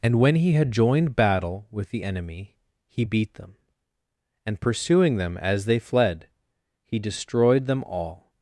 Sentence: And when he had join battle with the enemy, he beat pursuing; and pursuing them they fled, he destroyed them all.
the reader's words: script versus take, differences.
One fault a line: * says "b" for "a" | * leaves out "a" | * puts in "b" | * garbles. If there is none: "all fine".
* says "joined" for "join"
* says "them" for "pursuing"
* puts in "as"